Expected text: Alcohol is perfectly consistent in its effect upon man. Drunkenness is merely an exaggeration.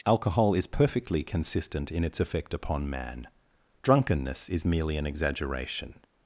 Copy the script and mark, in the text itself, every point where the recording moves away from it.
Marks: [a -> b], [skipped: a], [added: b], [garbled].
Alcohol is perfectly consistent in its effect upon man. Drunkenness is merely an exaggeration.